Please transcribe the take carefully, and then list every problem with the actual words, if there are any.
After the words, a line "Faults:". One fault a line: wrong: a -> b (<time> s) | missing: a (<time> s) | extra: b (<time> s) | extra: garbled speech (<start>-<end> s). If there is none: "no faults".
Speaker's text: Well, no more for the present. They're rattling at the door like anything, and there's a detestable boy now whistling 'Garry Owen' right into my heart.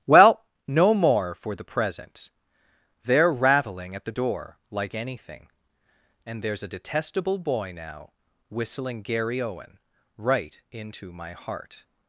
Well, no more for the present. They're rattling at the door like anything, and there's a detestable boy now whistling 'Garry Owen' right into my heart.
Faults:
no faults